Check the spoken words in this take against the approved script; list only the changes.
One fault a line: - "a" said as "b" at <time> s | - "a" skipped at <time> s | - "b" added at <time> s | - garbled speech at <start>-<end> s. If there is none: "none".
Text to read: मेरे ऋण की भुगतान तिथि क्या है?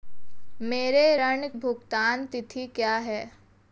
- "की" skipped at 1.5 s